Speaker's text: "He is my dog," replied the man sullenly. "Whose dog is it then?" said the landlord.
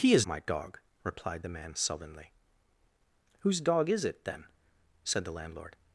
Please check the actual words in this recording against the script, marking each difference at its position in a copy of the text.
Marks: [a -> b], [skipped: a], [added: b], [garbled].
"He is my dog," replied the man sullenly. "Whose dog is it then?" said the landlord.